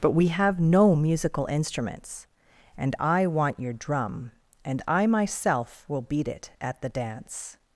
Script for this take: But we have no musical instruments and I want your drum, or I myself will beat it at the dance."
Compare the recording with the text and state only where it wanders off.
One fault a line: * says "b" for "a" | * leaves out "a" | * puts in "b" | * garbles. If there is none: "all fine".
* says "and" for "or"